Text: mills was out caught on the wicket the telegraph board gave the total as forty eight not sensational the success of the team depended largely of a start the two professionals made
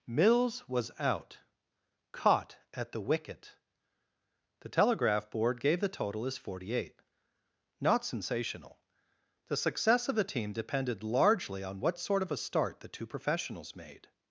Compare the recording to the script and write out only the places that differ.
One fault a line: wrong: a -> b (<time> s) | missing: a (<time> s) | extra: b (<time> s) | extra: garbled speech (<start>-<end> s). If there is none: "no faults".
wrong: on -> at (2.7 s)
extra: on what sort (11.6 s)